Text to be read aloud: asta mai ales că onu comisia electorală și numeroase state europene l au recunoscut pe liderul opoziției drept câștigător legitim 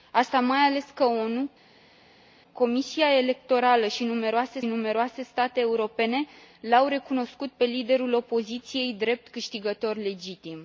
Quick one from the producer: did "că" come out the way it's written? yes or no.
yes